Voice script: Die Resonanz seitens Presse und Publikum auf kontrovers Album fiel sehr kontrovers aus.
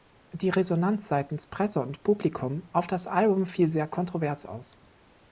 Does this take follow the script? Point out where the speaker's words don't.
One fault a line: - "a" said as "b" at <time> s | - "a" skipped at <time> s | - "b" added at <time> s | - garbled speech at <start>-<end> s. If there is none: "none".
- "kontrovers" said as "das" at 2.9 s